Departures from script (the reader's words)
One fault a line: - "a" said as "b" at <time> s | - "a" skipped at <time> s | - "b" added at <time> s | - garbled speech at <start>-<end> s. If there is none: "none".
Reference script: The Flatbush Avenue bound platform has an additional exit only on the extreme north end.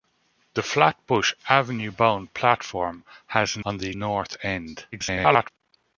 - "additional exit only" skipped at 3.6 s
- "extreme" skipped at 3.9 s
- garbled speech at 4.9-5.5 s